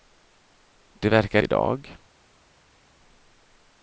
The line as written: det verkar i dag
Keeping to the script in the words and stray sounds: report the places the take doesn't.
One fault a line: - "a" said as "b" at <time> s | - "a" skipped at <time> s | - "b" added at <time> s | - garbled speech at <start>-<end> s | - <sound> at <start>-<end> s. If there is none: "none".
none